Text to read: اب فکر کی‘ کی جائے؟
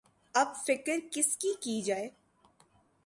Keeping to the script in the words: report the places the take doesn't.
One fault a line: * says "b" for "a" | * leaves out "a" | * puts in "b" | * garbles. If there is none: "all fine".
* puts in "کس"